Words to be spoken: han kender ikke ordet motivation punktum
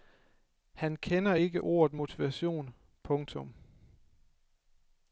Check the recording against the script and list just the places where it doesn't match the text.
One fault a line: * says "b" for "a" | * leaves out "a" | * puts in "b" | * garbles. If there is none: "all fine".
all fine